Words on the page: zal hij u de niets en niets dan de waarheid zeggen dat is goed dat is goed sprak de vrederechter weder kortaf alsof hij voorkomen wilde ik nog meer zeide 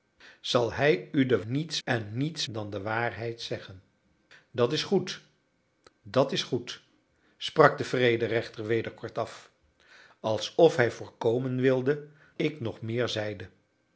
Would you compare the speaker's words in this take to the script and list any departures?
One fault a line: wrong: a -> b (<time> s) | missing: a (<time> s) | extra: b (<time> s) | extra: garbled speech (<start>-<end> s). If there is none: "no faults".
no faults